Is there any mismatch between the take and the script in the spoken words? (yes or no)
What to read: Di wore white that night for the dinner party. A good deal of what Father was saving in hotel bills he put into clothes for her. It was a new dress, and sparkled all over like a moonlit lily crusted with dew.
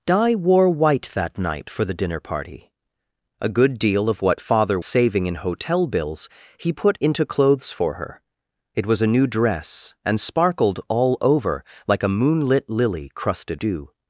yes